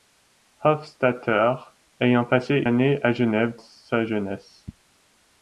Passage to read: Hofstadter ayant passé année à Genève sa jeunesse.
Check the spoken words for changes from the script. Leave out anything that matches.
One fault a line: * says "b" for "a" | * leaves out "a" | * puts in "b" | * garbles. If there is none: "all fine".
all fine